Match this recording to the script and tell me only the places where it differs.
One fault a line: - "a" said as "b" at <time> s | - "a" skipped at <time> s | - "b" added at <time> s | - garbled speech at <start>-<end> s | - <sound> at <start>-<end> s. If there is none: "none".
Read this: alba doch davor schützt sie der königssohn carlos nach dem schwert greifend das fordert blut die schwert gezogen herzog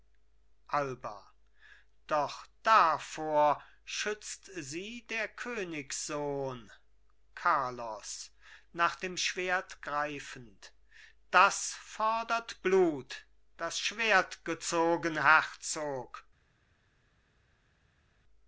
- "die" said as "das" at 13.6 s